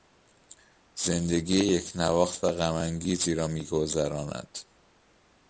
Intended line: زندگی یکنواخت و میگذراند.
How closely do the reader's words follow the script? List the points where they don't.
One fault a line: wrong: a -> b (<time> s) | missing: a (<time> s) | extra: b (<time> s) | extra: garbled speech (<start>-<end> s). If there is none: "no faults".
extra: غمانگیزی را (2.5 s)